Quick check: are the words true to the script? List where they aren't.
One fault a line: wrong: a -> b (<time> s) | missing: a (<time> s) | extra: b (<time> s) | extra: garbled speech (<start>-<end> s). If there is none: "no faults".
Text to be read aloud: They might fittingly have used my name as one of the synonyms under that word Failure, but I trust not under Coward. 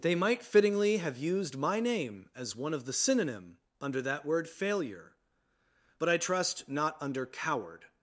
wrong: synonyms -> synonym (2.9 s)